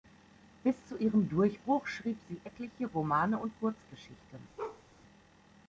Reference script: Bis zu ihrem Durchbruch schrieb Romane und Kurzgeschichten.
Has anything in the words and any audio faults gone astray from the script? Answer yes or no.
yes